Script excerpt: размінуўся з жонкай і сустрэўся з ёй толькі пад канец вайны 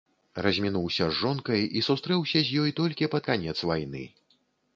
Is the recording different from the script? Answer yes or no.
no